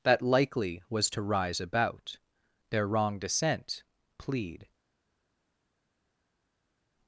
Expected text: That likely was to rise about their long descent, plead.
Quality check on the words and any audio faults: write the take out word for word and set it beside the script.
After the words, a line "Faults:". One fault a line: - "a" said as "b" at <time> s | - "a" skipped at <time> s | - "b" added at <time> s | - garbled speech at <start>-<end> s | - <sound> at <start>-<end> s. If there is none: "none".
That likely was to rise about their wrong descent, plead.
Faults:
- "long" said as "wrong" at 2.9 s